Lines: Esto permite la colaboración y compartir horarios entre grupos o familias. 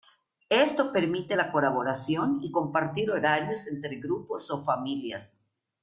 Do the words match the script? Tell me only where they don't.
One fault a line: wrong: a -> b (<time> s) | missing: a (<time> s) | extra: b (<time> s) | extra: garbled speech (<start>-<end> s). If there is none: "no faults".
no faults